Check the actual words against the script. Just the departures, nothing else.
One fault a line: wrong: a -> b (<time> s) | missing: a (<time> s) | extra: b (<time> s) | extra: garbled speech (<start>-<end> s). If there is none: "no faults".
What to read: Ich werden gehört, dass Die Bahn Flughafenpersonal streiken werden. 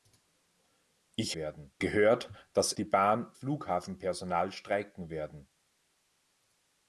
no faults